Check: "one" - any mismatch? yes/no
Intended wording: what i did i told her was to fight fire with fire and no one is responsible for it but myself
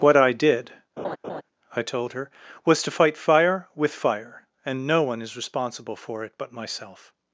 no